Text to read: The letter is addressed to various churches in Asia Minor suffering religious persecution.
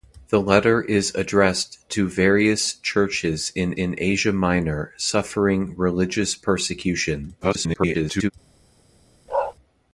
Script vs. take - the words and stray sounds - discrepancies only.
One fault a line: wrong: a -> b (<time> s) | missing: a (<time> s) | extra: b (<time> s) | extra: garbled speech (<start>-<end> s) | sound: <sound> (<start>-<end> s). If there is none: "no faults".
extra: in (3.7 s)
extra: garbled speech (7.4-8.3 s)
sound: bark (9.3-9.5 s)